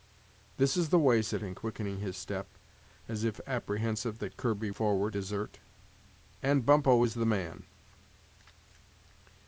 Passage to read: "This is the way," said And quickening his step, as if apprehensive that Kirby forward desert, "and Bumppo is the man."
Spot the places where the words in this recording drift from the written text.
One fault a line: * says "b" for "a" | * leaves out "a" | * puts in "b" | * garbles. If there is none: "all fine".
all fine